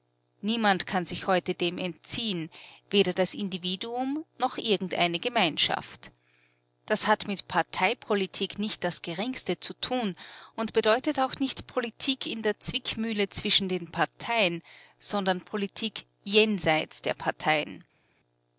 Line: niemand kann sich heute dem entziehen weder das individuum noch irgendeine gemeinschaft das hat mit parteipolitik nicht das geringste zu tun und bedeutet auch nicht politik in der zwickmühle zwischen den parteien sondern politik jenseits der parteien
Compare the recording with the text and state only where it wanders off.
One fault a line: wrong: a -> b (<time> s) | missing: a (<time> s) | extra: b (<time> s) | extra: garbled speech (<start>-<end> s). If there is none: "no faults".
no faults